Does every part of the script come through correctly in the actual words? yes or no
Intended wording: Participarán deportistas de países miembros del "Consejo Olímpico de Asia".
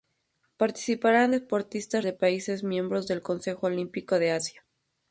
yes